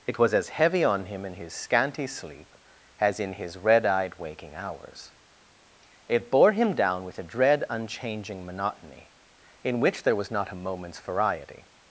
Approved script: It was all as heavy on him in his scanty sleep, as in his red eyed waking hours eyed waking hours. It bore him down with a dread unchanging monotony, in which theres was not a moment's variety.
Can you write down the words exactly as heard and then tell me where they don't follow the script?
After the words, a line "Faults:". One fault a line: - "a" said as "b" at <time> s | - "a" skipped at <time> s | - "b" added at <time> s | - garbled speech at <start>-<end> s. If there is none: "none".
It was as heavy on him in his scanty sleep, as in his red eyed waking hours. It bore him down with a dread unchanging monotony, in which there was not a moment's variety.
Faults:
- "all" skipped at 0.3 s
- "eyed waking hours" skipped at 5.1 s
- "theres" said as "there" at 10.0 s